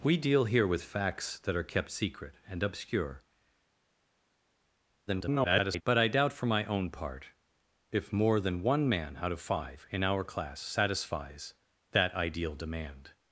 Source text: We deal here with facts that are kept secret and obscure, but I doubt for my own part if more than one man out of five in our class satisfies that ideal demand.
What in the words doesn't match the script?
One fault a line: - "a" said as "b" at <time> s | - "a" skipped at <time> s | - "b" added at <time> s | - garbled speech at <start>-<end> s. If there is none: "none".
- garbled speech at 5.1-5.8 s